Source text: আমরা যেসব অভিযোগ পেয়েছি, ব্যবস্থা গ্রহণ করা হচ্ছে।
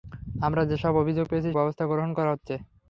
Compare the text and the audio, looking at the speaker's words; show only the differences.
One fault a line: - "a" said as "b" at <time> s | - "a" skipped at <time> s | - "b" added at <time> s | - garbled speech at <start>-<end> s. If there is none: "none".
none